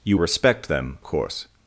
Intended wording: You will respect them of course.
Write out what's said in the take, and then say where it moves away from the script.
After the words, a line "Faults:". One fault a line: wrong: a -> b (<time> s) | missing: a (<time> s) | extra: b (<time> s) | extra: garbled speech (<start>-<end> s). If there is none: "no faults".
You respect them course.
Faults:
missing: will (0.2 s)
missing: of (1.0 s)